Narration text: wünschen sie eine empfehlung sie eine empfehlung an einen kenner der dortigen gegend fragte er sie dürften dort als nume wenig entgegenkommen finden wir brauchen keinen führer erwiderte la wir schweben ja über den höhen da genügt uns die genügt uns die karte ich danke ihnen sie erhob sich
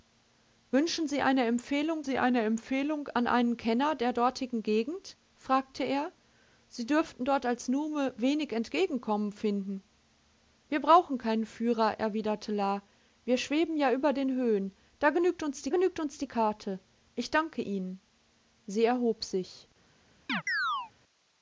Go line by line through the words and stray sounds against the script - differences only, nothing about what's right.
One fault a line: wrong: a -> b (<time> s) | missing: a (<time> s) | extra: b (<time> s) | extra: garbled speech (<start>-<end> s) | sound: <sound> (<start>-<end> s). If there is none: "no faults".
sound: chirp (20.3-20.9 s)